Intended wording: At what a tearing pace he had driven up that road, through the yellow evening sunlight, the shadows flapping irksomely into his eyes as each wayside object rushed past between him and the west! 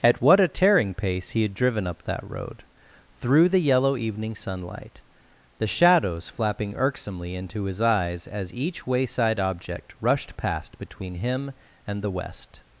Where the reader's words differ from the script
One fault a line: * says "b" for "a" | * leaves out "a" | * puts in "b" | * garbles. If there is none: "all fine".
all fine